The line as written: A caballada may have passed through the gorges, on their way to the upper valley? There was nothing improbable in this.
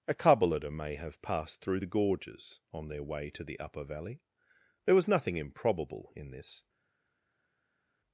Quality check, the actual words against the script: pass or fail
pass